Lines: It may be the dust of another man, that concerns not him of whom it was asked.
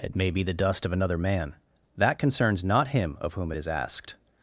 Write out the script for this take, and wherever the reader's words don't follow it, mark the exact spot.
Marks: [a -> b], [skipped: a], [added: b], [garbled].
It may be the dust of another man, that concerns not him of whom it [was -> is] asked.